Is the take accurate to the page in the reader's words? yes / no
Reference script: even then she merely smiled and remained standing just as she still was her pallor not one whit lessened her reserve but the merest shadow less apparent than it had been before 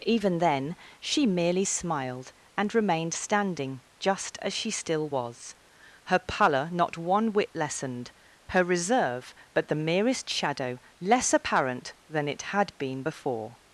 yes